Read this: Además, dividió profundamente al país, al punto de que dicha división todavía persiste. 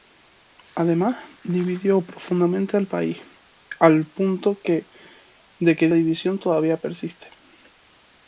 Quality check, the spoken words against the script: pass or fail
fail